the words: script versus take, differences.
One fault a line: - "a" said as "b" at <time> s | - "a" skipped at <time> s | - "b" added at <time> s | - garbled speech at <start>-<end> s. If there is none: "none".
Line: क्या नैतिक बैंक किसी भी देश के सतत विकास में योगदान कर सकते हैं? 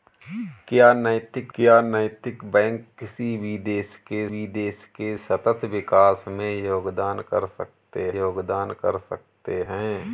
- "क्या नैतिक" added at 1.5 s
- "भी देश के" added at 4.3 s
- "योगदान कर सकते" added at 8.2 s